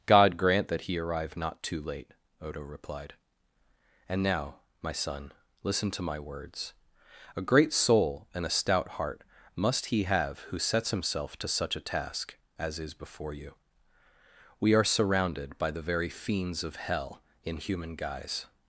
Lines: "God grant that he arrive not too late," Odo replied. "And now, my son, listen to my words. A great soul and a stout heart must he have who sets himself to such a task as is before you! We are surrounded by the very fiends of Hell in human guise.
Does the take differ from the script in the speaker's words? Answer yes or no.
no